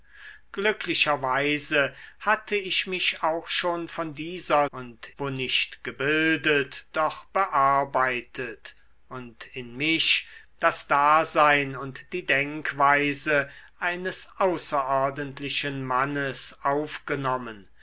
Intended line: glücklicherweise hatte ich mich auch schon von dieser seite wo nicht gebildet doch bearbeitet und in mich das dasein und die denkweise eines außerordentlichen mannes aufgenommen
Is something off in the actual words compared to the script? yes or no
yes